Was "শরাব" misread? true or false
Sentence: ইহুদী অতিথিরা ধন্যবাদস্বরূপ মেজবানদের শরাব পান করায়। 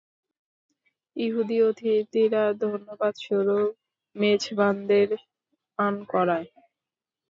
true